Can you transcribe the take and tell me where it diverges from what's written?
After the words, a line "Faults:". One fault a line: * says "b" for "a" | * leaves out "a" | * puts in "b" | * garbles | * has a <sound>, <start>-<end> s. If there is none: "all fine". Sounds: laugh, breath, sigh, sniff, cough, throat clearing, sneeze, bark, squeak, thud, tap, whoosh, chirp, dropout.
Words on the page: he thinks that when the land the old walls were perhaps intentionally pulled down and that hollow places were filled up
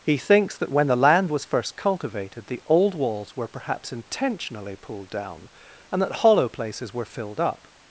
he thinks that when the land was first cultivated the old walls were perhaps intentionally pulled down and that hollow places were filled up
Faults:
* puts in "was first cultivated"